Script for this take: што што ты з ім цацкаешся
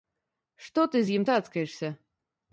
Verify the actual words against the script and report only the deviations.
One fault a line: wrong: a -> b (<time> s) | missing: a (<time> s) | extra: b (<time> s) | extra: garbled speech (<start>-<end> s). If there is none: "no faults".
missing: што (0.8 s)